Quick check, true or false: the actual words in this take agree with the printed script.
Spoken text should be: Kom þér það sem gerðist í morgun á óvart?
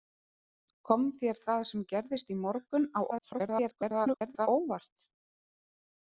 false